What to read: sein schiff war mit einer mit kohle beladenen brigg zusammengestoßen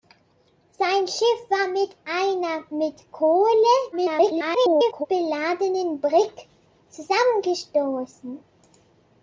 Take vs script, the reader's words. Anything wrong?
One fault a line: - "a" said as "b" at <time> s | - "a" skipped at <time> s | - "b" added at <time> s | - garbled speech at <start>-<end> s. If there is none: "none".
- garbled speech at 3.9-5.1 s